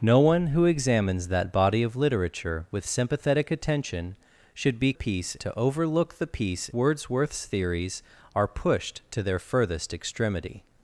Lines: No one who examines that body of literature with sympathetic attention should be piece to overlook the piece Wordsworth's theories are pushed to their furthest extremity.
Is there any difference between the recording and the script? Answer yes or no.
no